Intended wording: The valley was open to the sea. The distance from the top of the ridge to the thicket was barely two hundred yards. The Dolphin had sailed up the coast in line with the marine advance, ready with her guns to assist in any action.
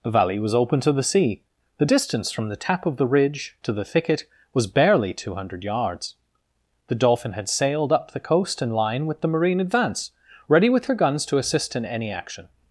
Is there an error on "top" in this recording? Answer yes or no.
yes